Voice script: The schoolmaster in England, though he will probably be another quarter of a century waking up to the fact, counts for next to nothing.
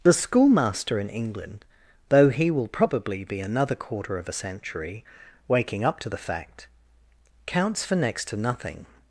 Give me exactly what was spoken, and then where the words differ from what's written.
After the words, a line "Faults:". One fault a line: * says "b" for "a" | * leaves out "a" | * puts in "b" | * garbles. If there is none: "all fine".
The schoolmaster in England, though he will probably be another quarter of a century waking up to the fact, counts for next to nothing.
Faults:
all fine